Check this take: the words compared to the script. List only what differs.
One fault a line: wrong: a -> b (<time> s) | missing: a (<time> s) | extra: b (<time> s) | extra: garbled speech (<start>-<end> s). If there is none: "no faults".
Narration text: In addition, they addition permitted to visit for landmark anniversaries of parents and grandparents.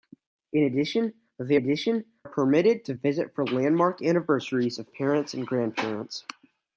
no faults